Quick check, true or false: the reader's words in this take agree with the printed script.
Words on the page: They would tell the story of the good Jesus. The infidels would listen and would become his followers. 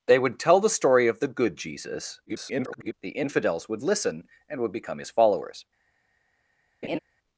false